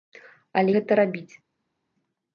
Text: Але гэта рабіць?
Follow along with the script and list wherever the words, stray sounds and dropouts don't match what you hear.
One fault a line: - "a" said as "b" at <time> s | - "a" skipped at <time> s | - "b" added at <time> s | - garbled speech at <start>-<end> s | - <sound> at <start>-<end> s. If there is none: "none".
none